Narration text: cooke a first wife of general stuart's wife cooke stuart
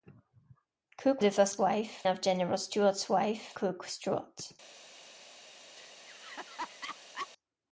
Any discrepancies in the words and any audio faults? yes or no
yes